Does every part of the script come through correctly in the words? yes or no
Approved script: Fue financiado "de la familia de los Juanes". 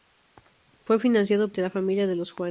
yes